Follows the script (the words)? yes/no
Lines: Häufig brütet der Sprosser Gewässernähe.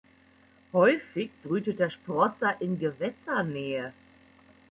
no